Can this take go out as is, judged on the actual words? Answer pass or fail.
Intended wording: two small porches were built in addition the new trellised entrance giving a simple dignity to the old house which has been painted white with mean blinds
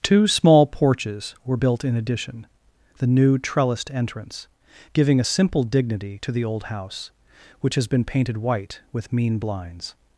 pass